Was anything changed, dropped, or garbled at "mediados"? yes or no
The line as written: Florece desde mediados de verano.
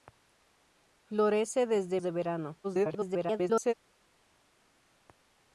yes